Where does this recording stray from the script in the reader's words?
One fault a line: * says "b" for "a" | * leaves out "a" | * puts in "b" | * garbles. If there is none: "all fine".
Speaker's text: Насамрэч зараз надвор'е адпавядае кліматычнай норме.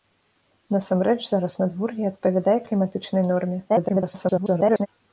* garbles